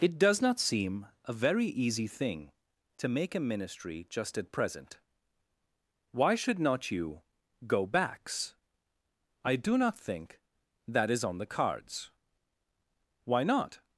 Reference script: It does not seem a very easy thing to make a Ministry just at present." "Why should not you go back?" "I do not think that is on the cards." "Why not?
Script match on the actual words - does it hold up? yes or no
no